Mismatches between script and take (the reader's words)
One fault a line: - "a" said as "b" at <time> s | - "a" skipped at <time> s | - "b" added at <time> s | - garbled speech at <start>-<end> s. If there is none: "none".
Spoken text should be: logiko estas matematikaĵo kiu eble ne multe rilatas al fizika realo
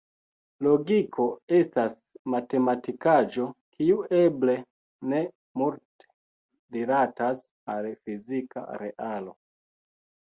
none